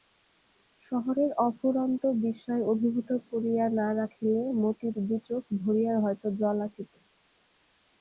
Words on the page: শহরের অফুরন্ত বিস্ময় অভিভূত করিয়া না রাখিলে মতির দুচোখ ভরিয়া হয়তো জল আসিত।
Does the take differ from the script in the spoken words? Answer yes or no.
no